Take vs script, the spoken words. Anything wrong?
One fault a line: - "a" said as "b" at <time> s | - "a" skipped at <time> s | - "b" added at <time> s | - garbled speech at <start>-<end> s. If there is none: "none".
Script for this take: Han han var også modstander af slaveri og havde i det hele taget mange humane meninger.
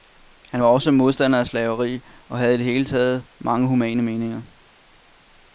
- "han" skipped at 0.6 s